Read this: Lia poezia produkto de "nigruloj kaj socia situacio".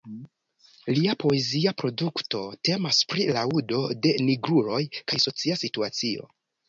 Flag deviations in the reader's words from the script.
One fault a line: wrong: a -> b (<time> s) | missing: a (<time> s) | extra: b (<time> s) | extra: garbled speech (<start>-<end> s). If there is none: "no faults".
extra: temas pri laŭdo (2.7 s)